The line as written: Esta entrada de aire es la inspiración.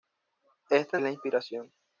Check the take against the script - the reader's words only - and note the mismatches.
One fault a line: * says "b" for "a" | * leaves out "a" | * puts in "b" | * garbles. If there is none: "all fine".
* leaves out "entrada de aire"